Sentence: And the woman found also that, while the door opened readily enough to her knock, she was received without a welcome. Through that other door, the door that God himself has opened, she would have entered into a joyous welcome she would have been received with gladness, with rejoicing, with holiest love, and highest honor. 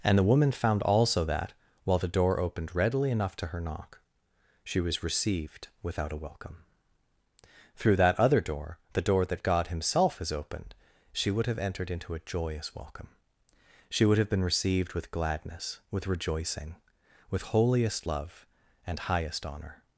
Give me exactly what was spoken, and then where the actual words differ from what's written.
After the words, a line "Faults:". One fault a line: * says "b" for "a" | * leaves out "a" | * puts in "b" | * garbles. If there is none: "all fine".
And the woman found also that, while the door opened readily enough to her knock, she was received without a welcome. Through that other door, the door that God himself has opened, she would have entered into a joyous welcome she would have been received with gladness, with rejoicing, with holiest love, and highest honor.
Faults:
all fine